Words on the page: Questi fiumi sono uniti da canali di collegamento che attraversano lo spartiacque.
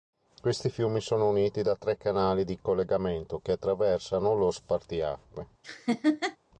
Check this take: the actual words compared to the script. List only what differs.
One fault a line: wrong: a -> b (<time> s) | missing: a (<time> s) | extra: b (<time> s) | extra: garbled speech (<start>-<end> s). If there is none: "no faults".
extra: tre (1.8 s)